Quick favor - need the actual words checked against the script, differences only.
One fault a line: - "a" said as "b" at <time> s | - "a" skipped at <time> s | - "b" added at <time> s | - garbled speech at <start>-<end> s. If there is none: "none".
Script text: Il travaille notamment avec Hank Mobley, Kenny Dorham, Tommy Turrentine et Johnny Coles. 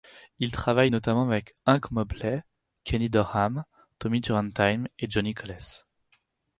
none